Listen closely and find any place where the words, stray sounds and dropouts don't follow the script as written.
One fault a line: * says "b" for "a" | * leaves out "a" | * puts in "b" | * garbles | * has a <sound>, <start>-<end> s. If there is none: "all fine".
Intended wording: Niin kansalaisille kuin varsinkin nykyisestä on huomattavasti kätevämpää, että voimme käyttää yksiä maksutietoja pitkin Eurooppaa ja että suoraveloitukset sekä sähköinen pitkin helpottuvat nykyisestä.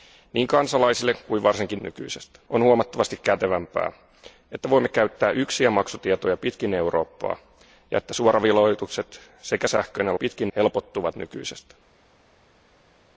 all fine